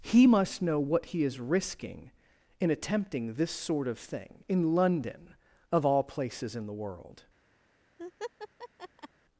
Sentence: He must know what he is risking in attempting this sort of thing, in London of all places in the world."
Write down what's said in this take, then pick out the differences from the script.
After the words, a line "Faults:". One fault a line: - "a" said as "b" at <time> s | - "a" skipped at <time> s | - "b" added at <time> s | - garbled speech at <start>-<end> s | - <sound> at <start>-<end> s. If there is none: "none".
He must know what he is risking in attempting this sort of thing, in London of all places in the world."
Faults:
- laugh at 8.0-9.1 s